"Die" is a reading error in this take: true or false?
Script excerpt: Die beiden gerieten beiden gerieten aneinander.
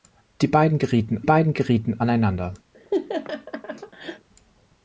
false